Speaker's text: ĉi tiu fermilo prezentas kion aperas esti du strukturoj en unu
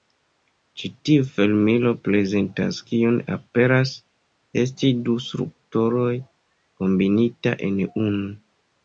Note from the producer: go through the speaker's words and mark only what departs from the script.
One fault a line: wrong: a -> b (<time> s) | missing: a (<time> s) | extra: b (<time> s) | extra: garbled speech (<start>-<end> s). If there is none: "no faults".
extra: kombinita (6.8 s)